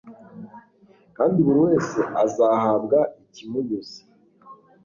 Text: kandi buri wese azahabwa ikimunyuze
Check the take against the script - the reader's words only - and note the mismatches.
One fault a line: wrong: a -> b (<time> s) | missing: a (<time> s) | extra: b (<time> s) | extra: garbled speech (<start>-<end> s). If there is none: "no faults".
no faults